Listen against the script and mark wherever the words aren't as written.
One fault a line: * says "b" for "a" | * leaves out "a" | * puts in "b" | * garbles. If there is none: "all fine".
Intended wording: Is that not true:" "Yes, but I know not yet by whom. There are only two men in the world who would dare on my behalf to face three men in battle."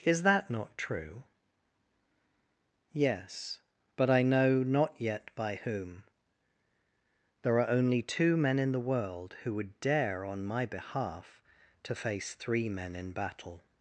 all fine